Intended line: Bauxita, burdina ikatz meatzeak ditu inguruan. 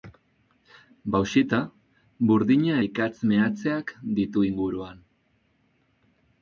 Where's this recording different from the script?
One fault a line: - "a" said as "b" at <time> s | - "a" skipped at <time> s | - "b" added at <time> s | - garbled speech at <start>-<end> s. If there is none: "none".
none